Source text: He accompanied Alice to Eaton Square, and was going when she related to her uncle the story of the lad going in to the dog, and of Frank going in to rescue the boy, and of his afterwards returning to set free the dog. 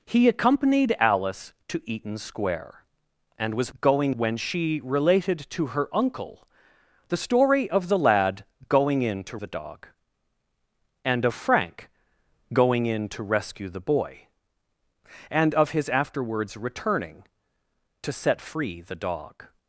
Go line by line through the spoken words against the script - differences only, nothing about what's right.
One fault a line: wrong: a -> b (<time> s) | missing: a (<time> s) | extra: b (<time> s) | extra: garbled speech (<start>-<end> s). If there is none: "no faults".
no faults